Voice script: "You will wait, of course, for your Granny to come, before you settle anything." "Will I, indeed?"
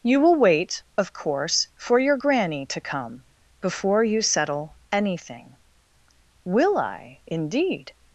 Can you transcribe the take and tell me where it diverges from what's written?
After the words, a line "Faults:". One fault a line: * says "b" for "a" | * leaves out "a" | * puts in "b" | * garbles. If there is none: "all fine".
"You will wait, of course, for your Granny to come, before you settle anything." "Will I, indeed?"
Faults:
all fine